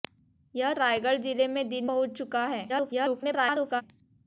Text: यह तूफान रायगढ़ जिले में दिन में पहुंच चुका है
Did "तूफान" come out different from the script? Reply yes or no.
yes